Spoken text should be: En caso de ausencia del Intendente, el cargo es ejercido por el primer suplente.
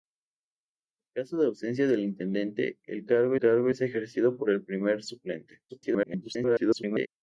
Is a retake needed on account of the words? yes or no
yes